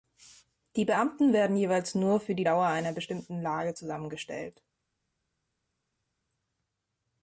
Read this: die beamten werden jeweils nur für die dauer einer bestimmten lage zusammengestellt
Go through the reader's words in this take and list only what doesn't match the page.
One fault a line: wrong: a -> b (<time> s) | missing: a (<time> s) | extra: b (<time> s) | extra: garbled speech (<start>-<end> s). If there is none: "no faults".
no faults